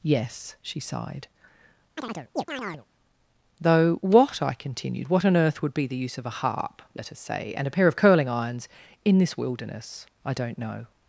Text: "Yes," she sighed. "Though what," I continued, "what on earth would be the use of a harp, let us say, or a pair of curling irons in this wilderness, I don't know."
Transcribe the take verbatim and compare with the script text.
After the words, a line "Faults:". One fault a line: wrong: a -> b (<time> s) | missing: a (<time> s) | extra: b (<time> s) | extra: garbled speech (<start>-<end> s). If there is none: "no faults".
"Yes," she sighed. "Though what," I continued, "what on earth would be the use of a harp, let us say, and a pair of curling irons in this wilderness, I don't know."
Faults:
wrong: or -> and (7.6 s)